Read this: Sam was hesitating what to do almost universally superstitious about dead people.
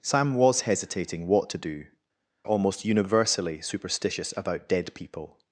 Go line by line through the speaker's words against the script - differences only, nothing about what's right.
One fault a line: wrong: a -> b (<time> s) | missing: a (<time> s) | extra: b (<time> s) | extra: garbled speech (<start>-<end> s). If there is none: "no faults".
no faults